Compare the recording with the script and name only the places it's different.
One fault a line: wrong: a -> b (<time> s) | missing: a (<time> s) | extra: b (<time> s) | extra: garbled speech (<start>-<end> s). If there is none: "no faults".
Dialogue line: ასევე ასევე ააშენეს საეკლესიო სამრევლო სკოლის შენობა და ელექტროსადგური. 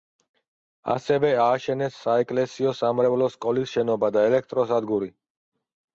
missing: ასევე (1.3 s)